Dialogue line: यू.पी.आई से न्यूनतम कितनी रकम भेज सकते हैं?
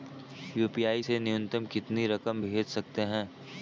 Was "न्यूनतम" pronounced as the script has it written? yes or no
yes